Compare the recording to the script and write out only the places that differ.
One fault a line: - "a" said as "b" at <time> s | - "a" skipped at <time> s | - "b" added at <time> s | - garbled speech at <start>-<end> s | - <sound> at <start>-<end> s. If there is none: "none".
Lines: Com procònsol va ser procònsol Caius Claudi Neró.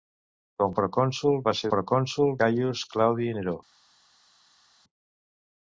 none